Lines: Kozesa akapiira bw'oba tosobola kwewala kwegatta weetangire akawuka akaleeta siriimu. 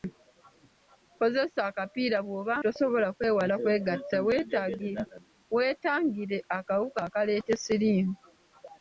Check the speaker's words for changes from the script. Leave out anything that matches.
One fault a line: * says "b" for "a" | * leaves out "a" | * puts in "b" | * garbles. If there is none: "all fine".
all fine